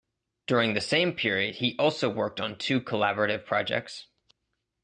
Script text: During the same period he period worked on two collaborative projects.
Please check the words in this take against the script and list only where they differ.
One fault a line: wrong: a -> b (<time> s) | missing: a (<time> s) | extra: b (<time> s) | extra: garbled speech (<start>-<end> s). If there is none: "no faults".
wrong: period -> also (1.8 s)